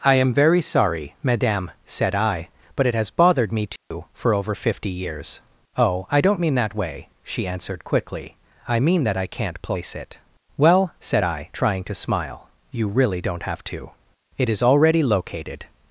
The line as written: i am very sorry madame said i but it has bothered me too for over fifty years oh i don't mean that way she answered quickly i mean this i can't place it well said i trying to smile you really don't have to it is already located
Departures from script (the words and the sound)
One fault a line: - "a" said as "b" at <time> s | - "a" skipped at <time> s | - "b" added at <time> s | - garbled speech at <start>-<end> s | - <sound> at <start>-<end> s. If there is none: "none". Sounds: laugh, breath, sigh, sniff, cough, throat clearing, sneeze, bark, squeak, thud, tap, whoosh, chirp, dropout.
- dropout at 3.8-3.9 s
- "this" said as "that" at 9.0 s